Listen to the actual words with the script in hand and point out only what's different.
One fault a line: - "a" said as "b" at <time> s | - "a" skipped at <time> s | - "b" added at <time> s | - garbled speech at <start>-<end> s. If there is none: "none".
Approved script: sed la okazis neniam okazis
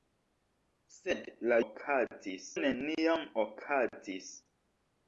none